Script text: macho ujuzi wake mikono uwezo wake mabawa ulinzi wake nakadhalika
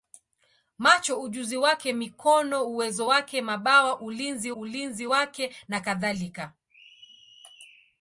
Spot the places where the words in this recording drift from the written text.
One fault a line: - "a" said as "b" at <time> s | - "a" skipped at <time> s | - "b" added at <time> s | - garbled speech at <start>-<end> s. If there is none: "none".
- "ulinzi" added at 4.5 s